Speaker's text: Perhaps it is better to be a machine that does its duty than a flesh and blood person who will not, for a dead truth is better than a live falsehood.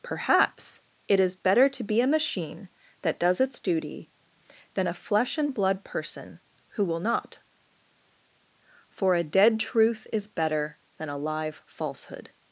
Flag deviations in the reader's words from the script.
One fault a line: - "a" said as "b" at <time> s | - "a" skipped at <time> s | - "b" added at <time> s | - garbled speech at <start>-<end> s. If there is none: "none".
none